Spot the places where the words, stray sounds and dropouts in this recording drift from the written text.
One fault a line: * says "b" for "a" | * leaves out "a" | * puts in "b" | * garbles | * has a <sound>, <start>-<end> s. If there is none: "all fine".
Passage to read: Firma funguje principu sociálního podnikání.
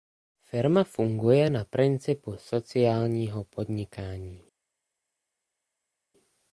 * puts in "na"